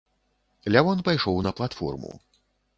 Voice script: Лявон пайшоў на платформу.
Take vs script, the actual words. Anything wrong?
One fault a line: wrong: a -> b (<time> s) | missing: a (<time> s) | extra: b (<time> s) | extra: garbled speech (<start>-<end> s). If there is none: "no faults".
no faults